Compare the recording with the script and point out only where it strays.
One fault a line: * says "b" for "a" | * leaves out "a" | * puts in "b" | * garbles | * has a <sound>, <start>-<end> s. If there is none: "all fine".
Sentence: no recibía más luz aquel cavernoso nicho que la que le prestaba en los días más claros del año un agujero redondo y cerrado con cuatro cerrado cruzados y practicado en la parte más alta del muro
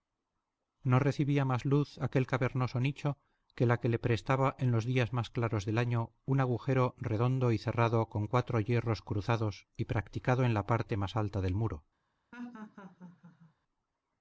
* says "hierros" for "cerrado"
* has a laugh, 12.3-13.5 s